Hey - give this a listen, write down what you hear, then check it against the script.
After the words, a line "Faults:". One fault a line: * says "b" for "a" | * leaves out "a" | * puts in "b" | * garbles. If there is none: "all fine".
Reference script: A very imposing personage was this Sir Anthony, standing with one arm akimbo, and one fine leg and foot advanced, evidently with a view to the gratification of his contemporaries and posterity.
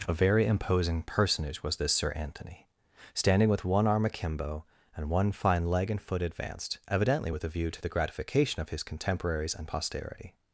A very imposing personage was this Sir Anthony, standing with one arm akimbo, and one fine leg and foot advanced, evidently with a view to the gratification of his contemporaries and posterity.
Faults:
all fine